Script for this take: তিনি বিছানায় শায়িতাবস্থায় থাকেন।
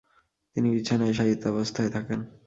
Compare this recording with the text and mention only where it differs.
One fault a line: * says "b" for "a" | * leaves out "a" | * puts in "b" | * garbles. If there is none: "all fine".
all fine